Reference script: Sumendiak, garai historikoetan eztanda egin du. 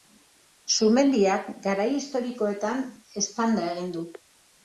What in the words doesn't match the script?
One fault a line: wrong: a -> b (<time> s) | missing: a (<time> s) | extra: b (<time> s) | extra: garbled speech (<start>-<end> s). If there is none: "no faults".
no faults